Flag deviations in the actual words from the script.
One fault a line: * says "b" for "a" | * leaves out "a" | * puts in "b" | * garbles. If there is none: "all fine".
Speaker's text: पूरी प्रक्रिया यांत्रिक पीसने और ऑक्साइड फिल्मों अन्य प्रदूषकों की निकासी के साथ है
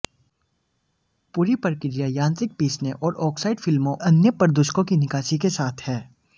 all fine